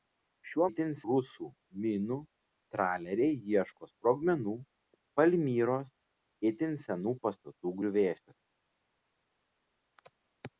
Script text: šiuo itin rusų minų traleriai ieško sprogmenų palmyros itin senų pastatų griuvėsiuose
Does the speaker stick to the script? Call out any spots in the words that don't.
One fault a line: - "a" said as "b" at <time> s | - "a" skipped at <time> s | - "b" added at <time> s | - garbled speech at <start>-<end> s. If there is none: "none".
none